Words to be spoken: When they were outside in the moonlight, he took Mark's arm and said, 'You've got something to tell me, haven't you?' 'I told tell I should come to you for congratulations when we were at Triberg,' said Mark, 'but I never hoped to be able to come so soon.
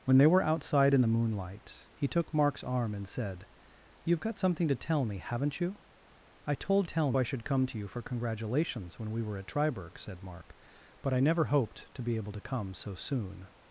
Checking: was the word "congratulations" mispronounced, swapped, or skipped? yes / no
no